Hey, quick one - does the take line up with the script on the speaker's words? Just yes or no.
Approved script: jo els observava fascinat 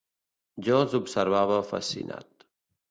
yes